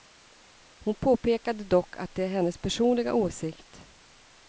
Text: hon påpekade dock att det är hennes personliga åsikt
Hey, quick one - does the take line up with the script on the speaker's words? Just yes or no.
yes